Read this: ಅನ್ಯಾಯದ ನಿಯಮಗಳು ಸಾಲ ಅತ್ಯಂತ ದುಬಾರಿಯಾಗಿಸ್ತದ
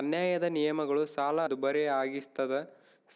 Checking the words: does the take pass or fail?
fail